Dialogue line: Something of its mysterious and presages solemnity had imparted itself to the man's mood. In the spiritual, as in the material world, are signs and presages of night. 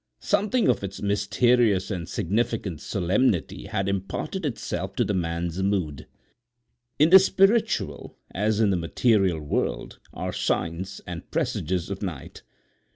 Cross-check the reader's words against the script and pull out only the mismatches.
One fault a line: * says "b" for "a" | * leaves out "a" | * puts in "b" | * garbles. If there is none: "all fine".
* says "significant" for "presages"